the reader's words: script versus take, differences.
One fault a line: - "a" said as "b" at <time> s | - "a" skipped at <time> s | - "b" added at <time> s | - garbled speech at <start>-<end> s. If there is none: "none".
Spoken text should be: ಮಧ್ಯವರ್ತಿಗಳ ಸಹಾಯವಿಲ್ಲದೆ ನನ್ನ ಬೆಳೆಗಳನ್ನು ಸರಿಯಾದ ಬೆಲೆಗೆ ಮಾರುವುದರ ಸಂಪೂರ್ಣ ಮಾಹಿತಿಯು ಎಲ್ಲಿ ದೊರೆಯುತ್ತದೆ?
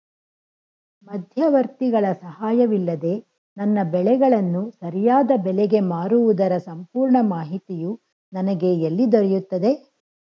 - "ನನಗೆ" added at 8.3 s